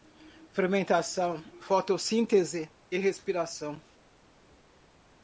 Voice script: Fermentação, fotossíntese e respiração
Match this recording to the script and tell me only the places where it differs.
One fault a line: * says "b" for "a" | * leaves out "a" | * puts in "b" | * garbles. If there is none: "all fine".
all fine